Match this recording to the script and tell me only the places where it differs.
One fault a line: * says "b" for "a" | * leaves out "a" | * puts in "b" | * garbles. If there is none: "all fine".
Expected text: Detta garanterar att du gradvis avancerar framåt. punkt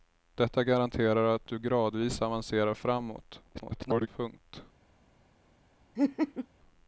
* garbles